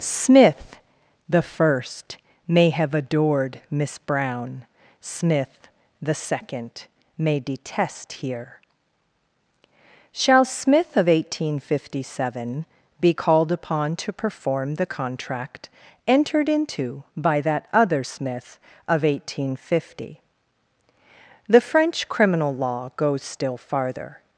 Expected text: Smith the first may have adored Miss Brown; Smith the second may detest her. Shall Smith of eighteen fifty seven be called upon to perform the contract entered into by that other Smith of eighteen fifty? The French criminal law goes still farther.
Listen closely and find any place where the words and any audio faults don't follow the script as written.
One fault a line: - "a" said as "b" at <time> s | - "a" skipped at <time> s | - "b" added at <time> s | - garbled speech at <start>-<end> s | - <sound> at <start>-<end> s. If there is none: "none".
- "her" said as "here" at 8.1 s